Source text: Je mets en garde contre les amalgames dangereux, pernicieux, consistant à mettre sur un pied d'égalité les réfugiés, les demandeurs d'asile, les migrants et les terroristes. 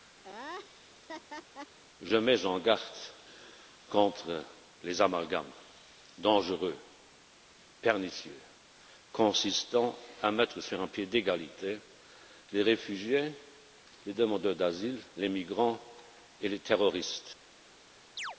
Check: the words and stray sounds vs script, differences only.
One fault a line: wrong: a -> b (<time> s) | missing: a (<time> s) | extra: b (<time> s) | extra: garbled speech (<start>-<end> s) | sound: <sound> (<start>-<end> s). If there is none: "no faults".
sound: laugh (0.2-1.8 s)
sound: chirp (18.2-18.4 s)